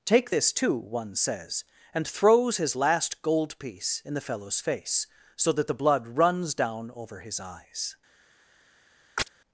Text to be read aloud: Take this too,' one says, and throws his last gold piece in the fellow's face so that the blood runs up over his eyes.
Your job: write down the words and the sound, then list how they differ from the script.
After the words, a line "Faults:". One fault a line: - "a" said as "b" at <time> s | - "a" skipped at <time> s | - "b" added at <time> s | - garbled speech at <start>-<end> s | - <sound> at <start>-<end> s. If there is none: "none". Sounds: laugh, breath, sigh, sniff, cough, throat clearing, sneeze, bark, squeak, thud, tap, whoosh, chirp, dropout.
Take this too,' one says, and throws his last gold piece in the fellow's face so that the blood runs down over his eyes.
Faults:
- "up" said as "down" at 6.5 s
- chirp at 9.2-9.3 s